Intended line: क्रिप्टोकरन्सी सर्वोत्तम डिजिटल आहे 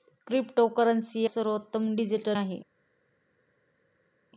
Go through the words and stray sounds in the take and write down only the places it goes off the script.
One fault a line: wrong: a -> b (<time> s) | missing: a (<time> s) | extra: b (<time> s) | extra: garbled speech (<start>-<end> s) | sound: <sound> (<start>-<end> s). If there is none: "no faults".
no faults